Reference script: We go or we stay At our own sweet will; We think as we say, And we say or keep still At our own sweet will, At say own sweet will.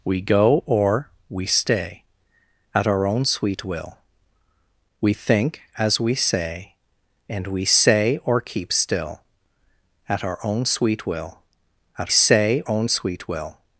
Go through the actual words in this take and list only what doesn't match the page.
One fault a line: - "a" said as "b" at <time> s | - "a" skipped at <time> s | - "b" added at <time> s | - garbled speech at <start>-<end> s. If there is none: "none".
none